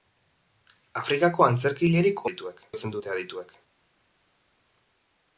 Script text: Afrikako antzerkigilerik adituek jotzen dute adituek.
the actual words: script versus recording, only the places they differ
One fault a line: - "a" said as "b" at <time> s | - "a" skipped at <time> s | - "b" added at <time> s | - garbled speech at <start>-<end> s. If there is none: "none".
none